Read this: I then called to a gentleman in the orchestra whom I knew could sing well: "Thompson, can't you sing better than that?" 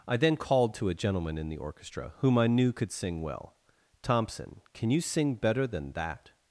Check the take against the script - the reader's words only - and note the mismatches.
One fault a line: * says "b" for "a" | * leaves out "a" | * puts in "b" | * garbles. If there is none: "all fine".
* says "can" for "can't"